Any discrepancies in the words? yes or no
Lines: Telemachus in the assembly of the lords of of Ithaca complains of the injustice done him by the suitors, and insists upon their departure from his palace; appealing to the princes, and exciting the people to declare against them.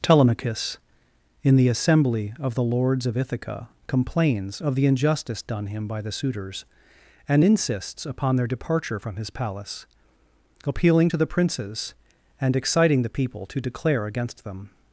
yes